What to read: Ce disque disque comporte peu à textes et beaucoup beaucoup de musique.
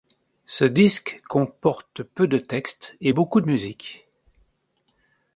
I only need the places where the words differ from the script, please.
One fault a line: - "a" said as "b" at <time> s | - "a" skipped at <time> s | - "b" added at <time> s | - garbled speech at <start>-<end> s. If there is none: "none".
- "disque" skipped at 1.2 s
- "à" said as "de" at 2.3 s
- "beaucoup" skipped at 3.4 s